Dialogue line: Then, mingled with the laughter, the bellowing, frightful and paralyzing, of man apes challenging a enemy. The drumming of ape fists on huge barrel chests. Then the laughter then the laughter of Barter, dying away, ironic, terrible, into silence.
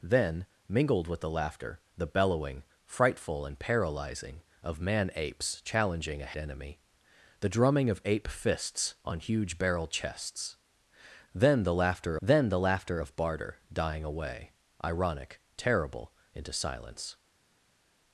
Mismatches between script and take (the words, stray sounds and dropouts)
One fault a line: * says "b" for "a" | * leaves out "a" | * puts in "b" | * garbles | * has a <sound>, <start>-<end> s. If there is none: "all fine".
all fine